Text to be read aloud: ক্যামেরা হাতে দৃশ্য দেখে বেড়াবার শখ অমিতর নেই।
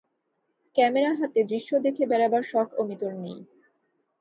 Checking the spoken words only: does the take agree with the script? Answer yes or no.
yes